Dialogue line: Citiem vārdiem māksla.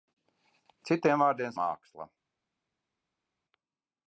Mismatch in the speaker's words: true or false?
false